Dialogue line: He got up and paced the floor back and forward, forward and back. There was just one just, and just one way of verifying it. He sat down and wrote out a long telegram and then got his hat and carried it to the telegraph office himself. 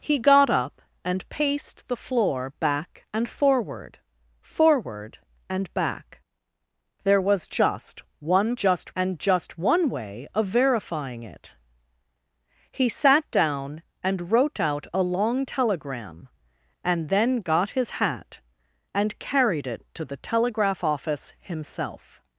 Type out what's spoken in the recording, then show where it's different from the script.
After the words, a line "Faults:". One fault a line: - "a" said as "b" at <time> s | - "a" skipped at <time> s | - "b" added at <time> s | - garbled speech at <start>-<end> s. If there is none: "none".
He got up and paced the floor back and forward, forward and back. There was just one just, and just one way of verifying it. He sat down and wrote out a long telegram and then got his hat and carried it to the telegraph office himself.
Faults:
none